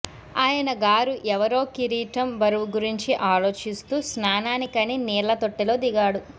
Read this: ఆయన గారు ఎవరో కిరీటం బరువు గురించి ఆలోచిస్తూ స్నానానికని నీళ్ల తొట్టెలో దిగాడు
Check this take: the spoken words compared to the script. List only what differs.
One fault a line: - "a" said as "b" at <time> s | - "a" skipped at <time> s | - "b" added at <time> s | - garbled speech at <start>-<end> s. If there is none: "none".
none